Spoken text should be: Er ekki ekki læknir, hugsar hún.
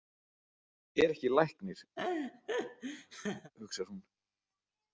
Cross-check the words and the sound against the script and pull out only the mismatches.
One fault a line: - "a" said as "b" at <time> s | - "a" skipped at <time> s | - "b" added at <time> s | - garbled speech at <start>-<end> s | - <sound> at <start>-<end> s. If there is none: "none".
- "ekki" skipped at 1.3 s
- laugh at 2.0-3.5 s